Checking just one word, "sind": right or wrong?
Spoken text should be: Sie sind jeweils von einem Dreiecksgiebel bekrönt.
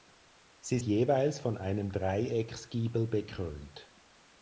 wrong